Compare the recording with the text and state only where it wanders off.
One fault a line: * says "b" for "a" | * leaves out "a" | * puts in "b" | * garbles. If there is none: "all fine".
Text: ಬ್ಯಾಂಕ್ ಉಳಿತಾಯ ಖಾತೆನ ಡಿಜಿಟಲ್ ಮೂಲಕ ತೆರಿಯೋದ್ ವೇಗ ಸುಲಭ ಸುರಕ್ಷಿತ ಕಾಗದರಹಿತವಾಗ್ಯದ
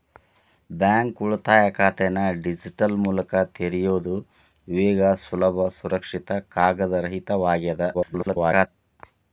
* garbles